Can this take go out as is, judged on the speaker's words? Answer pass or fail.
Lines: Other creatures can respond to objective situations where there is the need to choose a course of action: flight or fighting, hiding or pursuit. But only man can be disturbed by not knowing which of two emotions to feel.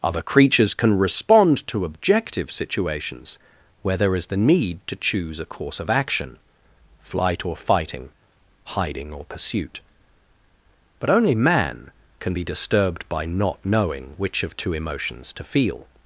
pass